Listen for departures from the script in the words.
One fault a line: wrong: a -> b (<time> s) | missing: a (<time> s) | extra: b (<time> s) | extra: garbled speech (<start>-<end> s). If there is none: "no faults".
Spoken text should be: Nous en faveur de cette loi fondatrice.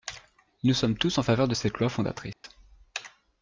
extra: sommes tous (0.7 s)